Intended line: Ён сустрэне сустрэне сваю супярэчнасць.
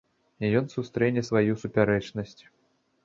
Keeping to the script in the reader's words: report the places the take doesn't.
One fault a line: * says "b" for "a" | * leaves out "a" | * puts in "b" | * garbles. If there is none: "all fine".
* leaves out "сустрэне"